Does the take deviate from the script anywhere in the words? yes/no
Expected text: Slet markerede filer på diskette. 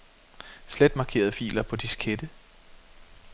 no